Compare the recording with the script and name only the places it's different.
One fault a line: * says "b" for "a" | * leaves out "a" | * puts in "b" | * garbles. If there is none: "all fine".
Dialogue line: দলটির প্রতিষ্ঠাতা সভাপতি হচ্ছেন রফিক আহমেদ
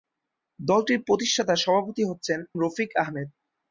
all fine